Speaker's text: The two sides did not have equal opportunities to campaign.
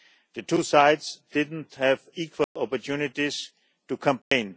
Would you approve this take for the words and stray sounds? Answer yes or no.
no